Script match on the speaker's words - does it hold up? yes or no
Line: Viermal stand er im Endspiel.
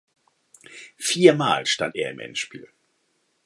yes